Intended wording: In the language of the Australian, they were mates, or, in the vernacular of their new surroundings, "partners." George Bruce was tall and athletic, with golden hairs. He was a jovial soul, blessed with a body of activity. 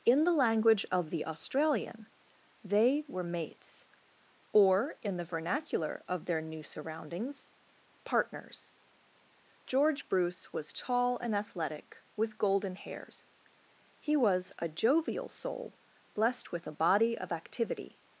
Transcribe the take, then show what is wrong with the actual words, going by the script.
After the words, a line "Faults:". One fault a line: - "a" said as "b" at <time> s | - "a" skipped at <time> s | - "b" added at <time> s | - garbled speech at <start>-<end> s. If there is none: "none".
In the language of the Australian, they were mates, or, in the vernacular of their new surroundings, "partners." George Bruce was tall and athletic, with golden hairs. He was a jovial soul, blessed with a body of activity.
Faults:
none